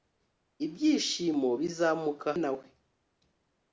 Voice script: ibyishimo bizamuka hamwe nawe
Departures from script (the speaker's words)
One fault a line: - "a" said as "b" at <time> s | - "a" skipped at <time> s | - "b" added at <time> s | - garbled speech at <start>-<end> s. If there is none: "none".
- "hamwe" skipped at 2.3 s